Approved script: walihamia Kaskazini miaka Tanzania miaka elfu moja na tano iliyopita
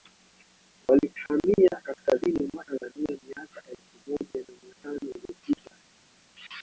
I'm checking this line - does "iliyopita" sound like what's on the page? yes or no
yes